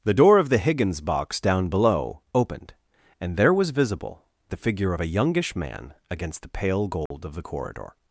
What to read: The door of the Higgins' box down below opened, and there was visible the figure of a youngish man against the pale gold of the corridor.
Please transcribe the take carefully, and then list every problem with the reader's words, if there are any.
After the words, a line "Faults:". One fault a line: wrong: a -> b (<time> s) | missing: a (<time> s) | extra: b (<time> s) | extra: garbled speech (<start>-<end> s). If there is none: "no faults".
The door of the Higgins' box down below opened, and there was visible the figure of a youngish man against the pale gold of the corridor.
Faults:
no faults